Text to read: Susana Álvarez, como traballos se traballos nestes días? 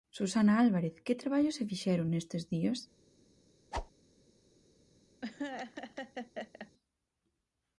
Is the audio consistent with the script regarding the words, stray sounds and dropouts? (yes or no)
no